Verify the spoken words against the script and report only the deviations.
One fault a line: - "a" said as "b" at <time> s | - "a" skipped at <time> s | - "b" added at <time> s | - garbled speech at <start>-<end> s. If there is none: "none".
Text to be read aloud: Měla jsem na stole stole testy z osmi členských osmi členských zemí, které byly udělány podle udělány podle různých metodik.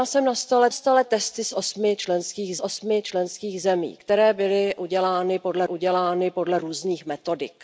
none